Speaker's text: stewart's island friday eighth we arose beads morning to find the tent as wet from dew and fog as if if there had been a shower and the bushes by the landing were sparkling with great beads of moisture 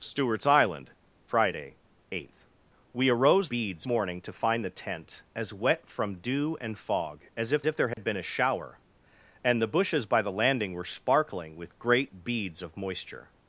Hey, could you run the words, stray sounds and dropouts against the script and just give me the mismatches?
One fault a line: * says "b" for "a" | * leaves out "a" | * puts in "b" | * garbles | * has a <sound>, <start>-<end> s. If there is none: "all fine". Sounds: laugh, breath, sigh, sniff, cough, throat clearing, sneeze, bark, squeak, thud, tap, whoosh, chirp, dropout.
* has a dropout, 7.9-8.0 s